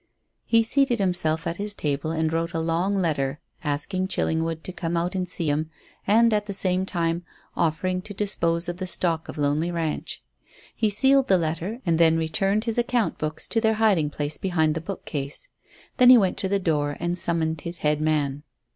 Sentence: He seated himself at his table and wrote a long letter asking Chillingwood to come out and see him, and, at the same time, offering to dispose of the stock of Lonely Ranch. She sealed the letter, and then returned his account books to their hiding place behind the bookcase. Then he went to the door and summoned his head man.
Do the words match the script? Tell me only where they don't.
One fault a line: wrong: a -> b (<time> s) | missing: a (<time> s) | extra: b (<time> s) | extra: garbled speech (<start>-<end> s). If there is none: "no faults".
wrong: She -> He (10.7 s)